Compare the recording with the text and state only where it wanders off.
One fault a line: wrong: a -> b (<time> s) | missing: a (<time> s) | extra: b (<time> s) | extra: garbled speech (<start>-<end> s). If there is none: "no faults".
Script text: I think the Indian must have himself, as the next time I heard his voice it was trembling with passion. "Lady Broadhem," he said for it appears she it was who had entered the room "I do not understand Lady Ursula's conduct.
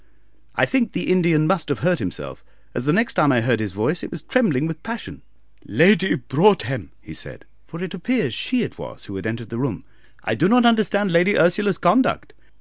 extra: hurt (1.9 s)